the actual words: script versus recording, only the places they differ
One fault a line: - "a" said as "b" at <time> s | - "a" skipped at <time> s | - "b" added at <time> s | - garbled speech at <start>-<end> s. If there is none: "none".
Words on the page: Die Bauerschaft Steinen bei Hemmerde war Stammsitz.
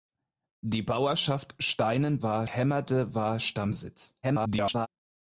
- "bei" said as "war" at 2.2 s
- garbled speech at 4.2-4.9 s